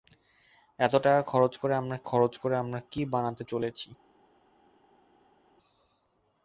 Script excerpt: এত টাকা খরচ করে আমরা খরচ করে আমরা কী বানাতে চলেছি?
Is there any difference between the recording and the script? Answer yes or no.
no